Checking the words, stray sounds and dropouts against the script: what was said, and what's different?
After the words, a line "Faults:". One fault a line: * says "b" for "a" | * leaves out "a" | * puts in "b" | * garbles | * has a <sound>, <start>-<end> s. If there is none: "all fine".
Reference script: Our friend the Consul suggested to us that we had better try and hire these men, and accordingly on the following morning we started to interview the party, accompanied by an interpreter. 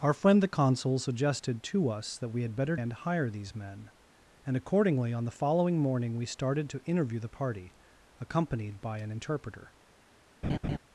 Our friend the Consul suggested to us that we had better and hire these men, and accordingly on the following morning we started to interview the party, accompanied by an interpreter.
Faults:
* leaves out "try"
* has a laugh, 10.4-10.8 s